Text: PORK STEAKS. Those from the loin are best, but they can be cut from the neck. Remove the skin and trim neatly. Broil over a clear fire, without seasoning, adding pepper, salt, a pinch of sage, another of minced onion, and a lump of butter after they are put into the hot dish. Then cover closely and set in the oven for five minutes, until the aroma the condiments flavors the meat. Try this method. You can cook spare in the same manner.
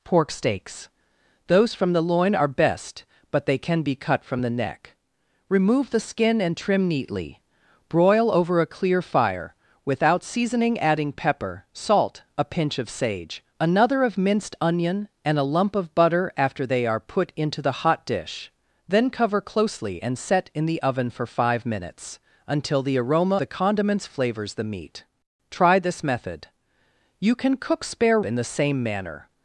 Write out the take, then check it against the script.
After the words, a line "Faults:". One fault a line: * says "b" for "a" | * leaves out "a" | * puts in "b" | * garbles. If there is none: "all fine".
PORK STEAKS. Those from the loin are best, but they can be cut from the neck. Remove the skin and trim neatly. Broil over a clear fire, without seasoning, adding pepper, salt, a pinch of sage, another of minced onion, and a lump of butter after they are put into the hot dish. Then cover closely and set in the oven for five minutes, until the aroma the condiments flavors the meat. Try this method. You can cook spare in the same manner.
Faults:
all fine